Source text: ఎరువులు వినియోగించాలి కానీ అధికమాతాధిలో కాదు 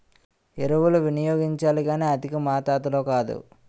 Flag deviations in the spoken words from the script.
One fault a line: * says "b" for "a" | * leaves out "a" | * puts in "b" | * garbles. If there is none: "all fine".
all fine